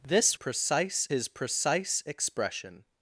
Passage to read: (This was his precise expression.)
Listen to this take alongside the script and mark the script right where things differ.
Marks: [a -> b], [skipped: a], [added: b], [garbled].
(This [was -> precise] his precise expression.)